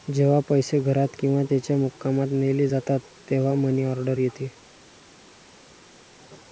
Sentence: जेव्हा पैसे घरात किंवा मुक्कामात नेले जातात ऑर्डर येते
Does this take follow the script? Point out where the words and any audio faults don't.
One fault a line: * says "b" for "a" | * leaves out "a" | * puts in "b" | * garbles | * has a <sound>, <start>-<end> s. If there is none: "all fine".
* puts in "त्याच्या"
* puts in "तेव्हा मनी"